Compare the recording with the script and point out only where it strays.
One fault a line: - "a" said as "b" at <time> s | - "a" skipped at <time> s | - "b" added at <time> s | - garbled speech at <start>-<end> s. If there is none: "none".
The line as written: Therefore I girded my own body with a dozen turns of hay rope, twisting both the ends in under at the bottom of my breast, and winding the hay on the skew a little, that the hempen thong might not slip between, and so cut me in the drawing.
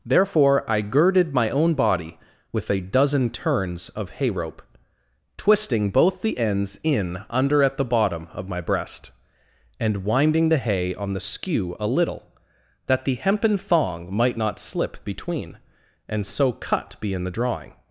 - "me" said as "be" at 17.0 s